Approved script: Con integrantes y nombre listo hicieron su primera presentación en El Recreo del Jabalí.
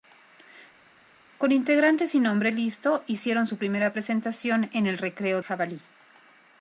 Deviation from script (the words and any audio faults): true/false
true